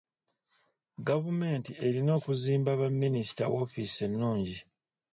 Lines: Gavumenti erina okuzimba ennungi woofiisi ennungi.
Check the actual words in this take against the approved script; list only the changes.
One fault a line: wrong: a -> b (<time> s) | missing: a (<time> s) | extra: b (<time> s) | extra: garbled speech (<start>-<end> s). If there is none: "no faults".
wrong: ennungi -> baminisita (2.8 s)